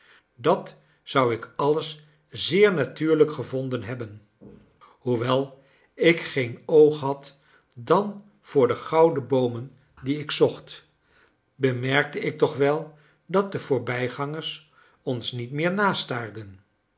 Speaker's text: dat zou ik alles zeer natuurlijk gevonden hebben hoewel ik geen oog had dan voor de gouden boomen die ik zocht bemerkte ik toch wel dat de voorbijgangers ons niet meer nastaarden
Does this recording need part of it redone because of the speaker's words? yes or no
no